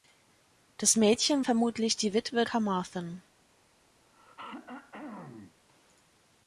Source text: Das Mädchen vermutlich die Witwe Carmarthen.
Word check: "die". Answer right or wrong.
right